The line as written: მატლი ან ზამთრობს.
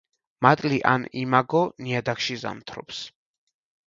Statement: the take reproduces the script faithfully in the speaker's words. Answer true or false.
false